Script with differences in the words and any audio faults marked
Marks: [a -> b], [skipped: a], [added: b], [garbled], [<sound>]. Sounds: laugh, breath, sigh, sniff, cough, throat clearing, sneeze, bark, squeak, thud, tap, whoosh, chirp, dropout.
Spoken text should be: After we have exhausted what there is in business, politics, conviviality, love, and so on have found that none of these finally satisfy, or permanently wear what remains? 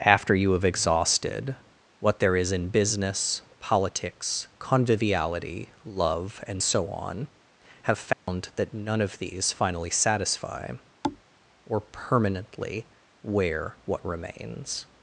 After [we -> you] have exhausted what there is in business, politics, conviviality, love, and so on have found [dropout] that none of these finally satisfy, [thud] or permanently wear what remains?